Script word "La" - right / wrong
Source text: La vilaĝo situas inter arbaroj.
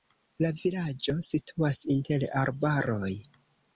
right